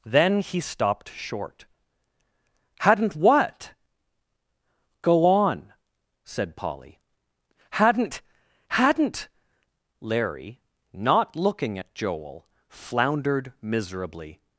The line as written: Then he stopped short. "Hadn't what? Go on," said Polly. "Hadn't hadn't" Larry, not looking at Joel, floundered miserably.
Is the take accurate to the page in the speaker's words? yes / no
yes